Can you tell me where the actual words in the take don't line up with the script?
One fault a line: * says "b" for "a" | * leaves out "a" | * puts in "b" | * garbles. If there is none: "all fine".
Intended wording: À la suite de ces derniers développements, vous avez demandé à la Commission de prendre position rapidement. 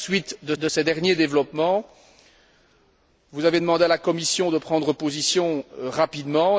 * puts in "de"